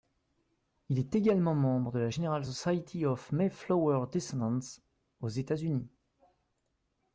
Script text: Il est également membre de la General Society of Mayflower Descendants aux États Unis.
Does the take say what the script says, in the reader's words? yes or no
yes